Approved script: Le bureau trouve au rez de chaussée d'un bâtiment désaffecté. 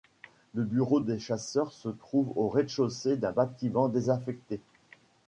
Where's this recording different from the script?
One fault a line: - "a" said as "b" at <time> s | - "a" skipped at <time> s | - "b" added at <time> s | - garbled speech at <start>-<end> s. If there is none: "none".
- "des chasseurs se" added at 1.0 s